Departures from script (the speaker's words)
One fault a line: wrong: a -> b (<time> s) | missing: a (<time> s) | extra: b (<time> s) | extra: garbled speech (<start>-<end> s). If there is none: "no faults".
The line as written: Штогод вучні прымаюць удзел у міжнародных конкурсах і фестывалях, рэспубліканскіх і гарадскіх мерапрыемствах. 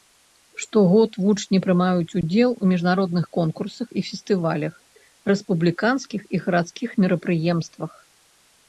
no faults